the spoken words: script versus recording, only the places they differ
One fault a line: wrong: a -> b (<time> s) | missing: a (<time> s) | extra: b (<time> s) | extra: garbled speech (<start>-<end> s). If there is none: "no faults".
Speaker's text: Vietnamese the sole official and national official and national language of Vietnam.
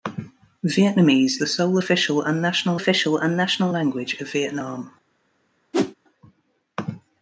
no faults